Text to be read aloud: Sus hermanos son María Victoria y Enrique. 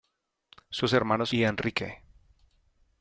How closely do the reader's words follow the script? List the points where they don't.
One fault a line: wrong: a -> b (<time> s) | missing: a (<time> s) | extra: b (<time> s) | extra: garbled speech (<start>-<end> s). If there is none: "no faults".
missing: son María Victoria (1.3 s)